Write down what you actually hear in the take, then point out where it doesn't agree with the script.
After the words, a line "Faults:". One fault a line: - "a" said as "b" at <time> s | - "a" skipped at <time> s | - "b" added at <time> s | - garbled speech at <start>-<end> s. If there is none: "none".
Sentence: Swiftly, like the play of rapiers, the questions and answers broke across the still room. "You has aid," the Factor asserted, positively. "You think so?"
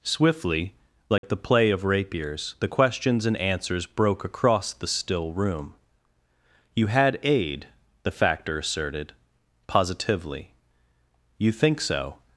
Swiftly, like the play of rapiers, the questions and answers broke across the still room. "You had aid," the Factor asserted, positively. "You think so?"
Faults:
- "has" said as "had" at 6.9 s